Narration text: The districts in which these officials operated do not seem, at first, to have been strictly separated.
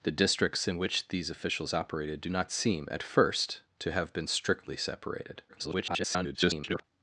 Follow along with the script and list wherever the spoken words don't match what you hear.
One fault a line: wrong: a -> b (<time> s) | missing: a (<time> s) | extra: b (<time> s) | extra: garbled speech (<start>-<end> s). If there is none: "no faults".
extra: garbled speech (5.5-6.8 s)